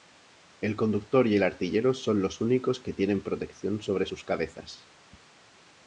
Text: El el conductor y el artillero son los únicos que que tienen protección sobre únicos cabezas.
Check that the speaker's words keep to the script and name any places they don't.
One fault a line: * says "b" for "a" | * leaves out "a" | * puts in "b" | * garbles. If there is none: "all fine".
* leaves out "el"
* leaves out "que"
* says "sus" for "únicos"